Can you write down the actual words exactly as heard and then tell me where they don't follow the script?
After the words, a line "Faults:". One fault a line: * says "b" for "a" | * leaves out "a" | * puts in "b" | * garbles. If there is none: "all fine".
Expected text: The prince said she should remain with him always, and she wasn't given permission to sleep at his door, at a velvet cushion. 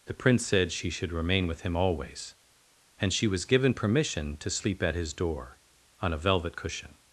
The prince said she should remain with him always, and she was given permission to sleep at his door, on a velvet cushion.
Faults:
* says "was" for "wasn't"
* says "on" for "at"